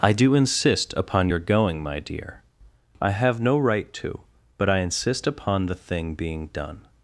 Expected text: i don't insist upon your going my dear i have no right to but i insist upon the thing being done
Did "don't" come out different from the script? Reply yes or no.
yes